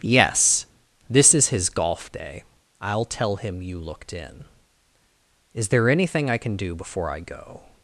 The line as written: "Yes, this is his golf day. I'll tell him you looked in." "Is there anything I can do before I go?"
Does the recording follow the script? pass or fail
pass